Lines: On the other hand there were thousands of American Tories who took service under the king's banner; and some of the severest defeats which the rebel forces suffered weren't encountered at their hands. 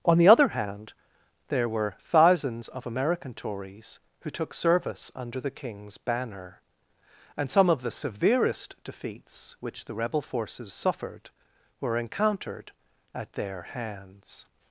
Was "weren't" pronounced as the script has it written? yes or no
no